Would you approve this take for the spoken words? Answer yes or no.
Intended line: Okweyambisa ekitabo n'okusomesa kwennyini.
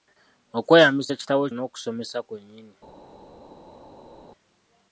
yes